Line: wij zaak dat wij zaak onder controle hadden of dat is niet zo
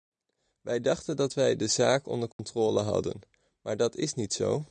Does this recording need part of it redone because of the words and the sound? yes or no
yes